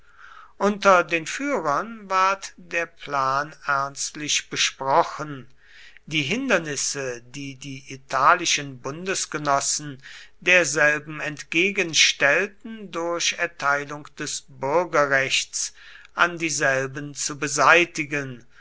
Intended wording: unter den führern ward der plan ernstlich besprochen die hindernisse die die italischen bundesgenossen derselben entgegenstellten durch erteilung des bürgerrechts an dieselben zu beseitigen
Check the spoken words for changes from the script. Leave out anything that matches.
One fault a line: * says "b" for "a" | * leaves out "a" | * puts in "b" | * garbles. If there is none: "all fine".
all fine